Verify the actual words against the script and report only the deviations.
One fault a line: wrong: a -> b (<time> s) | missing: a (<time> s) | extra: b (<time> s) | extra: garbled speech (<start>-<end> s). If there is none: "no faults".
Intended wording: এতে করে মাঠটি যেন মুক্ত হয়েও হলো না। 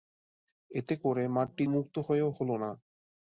missing: যেন (1.6 s)